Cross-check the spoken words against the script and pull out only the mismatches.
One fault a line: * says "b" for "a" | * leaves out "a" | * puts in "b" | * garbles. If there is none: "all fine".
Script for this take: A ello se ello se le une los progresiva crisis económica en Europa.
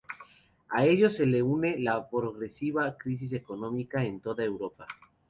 * leaves out "ello se"
* says "la" for "los"
* puts in "toda"